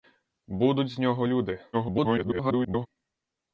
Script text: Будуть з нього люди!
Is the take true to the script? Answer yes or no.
no